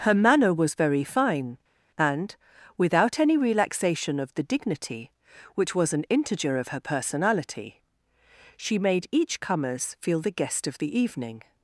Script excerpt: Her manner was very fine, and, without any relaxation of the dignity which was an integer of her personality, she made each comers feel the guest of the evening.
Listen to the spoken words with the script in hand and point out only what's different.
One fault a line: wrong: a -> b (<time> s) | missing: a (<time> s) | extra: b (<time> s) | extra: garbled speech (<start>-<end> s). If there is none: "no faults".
no faults